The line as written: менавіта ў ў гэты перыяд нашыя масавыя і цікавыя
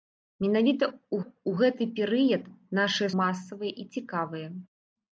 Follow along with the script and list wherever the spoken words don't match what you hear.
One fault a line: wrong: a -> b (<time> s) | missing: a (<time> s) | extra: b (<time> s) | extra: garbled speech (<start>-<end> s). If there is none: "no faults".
no faults